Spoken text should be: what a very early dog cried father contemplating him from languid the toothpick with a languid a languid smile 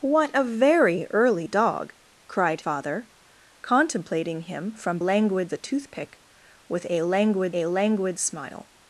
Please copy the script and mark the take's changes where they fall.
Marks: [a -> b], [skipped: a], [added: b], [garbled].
what a very early dog cried father contemplating him from languid the toothpick with a languid a languid smile